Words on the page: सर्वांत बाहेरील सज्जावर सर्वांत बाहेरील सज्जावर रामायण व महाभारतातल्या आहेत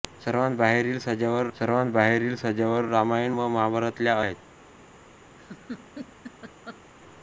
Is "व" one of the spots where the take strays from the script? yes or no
no